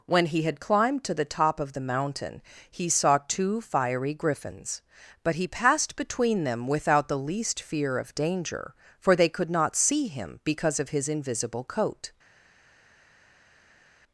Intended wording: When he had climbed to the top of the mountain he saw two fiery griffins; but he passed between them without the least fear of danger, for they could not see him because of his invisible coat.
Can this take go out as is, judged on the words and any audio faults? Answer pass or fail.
pass